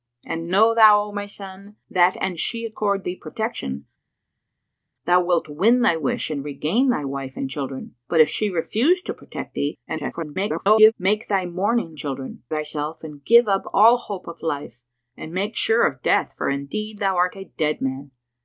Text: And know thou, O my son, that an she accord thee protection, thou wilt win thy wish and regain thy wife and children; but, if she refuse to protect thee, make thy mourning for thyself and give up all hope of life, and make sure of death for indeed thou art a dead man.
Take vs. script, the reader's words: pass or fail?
fail